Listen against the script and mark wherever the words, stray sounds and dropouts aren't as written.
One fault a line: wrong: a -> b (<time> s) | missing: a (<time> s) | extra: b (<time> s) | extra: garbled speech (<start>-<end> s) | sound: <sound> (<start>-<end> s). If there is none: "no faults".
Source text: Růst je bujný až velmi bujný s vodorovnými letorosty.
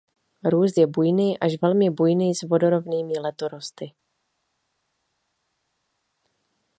no faults